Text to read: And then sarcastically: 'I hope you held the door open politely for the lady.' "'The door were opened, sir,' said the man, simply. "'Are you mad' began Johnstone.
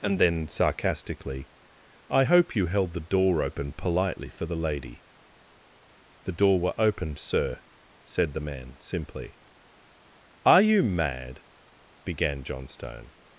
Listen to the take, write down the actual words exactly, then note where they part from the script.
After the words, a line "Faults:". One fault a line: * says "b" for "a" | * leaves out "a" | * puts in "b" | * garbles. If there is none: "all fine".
And then sarcastically: 'I hope you held the door open politely for the lady.' "'The door were opened, sir,' said the man, simply. "'Are you mad' began Johnstone.
Faults:
all fine